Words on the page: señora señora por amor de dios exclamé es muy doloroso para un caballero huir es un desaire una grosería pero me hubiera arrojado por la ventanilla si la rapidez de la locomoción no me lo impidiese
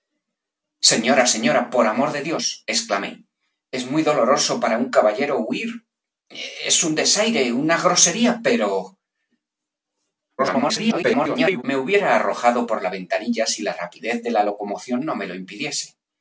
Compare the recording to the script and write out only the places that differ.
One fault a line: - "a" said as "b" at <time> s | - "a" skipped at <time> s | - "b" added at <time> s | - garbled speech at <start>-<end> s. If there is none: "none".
- garbled speech at 10.4-11.6 s